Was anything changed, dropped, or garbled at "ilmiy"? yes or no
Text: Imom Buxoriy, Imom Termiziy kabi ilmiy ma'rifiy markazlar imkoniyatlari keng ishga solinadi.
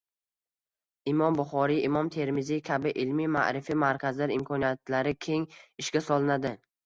no